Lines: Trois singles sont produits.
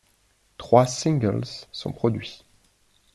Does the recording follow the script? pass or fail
pass